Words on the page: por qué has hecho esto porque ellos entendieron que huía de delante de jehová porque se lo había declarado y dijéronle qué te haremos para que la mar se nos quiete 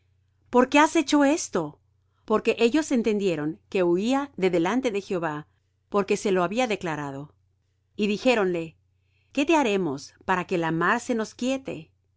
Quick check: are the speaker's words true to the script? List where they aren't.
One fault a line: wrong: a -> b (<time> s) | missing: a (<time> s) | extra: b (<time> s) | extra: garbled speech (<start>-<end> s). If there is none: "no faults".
no faults